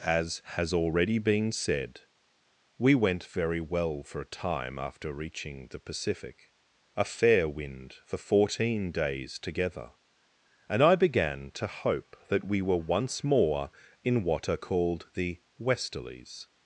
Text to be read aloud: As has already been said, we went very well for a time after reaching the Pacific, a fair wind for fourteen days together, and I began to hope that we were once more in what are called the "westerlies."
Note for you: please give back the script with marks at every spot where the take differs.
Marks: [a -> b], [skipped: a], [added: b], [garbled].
As has already been said, we went very well for a time after reaching the Pacific, a fair wind for fourteen days together, and I began to hope that we were once more in what are called the "westerlies."